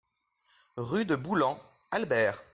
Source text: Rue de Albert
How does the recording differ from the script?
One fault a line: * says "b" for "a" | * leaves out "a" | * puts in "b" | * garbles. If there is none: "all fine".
* puts in "Boulan"